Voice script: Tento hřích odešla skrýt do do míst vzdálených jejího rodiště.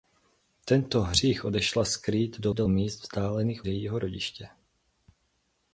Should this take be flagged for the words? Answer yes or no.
no